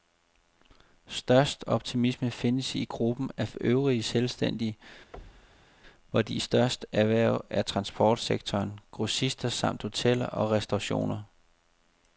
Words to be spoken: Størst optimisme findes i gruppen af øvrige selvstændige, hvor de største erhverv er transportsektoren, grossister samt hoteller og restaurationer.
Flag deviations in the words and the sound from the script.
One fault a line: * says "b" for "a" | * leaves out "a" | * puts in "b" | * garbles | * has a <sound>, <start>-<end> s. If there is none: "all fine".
* has a thud, 5.1-5.7 s